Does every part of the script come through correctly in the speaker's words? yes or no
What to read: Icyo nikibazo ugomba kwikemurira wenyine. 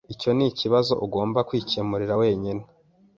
yes